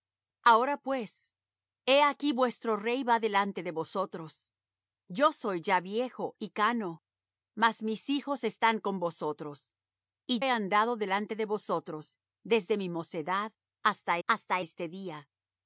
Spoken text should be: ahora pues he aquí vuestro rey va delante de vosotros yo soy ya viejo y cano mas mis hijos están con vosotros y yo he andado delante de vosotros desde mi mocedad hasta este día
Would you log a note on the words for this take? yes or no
yes